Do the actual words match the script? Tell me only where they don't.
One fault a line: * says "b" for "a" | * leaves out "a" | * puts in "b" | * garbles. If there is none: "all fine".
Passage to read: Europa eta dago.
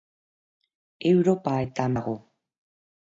all fine